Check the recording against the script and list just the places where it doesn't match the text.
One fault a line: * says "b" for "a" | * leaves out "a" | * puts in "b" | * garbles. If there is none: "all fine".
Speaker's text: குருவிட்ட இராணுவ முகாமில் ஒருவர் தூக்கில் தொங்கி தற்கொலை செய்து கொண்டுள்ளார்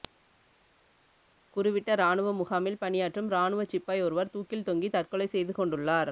* puts in "பணியாற்றும் இராணுவச் சிப்பாய்"